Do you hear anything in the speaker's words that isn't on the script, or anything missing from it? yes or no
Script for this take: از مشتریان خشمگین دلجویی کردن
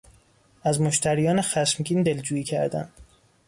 no